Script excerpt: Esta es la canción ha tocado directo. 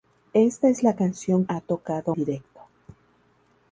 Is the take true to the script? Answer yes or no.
yes